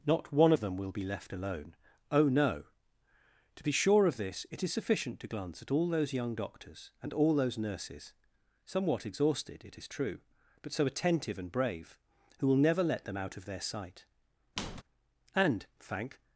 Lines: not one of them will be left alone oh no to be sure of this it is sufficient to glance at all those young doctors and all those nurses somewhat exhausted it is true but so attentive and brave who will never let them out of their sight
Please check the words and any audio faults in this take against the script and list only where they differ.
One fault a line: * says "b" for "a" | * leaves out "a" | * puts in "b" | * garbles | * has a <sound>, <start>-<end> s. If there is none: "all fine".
* has a squeak, 14.6-14.8 s
* puts in "and thank"